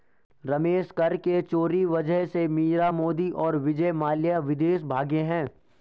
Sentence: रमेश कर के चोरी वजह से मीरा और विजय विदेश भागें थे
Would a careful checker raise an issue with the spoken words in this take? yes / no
yes